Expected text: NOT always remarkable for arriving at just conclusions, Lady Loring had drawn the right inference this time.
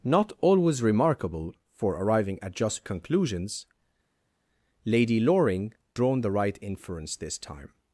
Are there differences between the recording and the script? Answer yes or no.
yes